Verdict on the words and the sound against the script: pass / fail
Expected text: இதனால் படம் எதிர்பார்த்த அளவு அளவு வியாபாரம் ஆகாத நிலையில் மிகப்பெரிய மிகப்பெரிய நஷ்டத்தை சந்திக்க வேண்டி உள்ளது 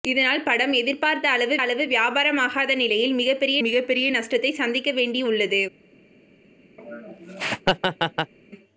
fail